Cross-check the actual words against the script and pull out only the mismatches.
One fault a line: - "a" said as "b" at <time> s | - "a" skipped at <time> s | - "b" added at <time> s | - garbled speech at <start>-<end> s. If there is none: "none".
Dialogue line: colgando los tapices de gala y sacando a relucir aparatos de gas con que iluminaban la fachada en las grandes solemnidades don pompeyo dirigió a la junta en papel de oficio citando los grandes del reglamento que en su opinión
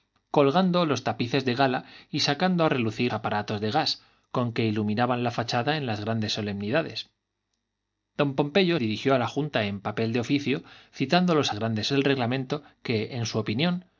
none